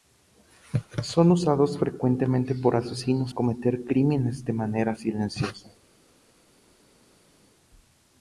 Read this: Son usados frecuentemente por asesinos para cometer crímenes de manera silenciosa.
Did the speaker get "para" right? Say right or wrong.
wrong